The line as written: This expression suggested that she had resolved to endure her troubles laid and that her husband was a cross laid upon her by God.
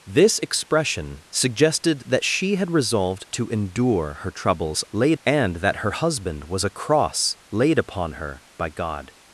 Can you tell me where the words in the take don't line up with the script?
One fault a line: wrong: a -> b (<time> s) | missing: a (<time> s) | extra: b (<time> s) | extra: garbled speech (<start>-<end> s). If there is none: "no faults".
no faults